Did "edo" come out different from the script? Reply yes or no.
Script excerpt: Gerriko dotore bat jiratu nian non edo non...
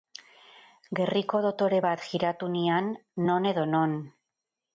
no